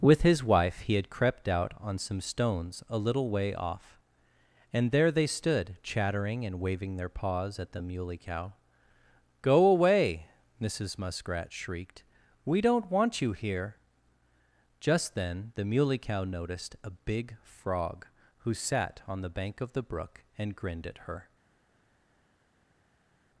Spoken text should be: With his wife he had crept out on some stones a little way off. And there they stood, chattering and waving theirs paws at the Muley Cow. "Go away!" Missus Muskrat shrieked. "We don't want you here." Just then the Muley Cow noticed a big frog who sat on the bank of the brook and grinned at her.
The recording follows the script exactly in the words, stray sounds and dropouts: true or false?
false